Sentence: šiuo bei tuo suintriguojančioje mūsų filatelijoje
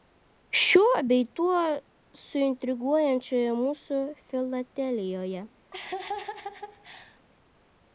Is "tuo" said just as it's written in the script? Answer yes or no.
yes